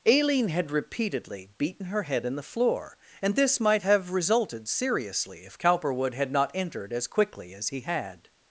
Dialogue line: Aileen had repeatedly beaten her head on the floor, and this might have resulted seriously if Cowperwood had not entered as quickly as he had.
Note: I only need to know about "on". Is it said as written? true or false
false